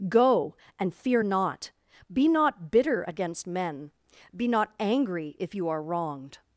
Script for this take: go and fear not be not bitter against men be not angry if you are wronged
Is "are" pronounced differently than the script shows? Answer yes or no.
no